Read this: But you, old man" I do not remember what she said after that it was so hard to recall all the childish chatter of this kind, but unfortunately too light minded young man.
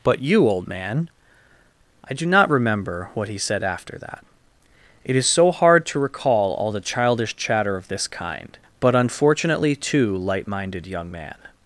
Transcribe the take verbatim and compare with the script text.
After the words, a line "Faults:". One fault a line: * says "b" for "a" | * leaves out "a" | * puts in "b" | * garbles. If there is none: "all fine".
But you, old man" I do not remember what he said after that it is so hard to recall all the childish chatter of this kind, but unfortunately too light minded young man.
Faults:
* says "he" for "she"
* says "is" for "was"